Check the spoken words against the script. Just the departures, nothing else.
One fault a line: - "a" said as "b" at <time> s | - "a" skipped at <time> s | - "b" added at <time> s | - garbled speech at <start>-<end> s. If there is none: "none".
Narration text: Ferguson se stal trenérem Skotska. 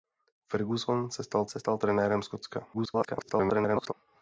- "se stal" added at 1.5 s
- garbled speech at 2.7-3.9 s